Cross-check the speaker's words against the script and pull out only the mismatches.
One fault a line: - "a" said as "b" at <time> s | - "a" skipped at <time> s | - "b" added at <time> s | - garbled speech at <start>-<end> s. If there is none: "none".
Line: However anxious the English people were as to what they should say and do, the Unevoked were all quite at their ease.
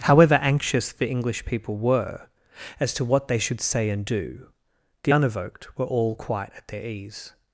none